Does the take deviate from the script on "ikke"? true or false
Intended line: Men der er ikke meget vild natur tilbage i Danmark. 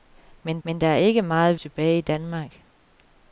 false